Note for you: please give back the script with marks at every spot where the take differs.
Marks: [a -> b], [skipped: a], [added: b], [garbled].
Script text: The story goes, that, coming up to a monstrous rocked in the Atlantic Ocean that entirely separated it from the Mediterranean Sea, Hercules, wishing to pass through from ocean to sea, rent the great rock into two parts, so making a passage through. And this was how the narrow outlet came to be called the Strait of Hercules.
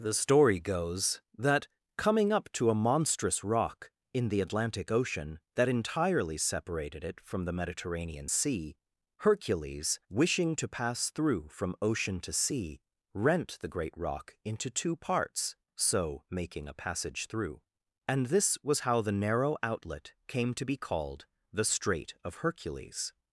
The story goes, that, coming up to a monstrous [rocked -> rock] in the Atlantic Ocean that entirely separated it from the Mediterranean Sea, Hercules, wishing to pass through from ocean to sea, rent the great rock into two parts, so making a passage through. And this was how the narrow outlet came to be called the Strait of Hercules.